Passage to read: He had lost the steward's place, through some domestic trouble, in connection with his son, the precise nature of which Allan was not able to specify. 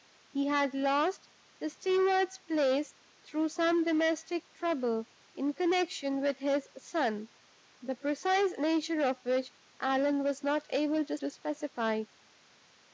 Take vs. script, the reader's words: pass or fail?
fail